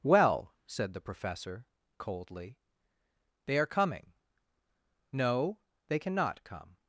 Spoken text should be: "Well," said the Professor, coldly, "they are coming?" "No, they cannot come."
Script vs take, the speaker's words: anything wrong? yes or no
no